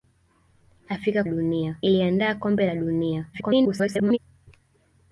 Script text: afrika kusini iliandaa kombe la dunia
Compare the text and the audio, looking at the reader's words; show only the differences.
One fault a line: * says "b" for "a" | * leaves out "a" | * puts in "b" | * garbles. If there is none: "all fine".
* says "dunia" for "kusini"
* garbles